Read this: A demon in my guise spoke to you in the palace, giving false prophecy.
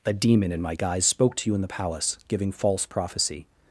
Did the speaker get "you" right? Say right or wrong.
right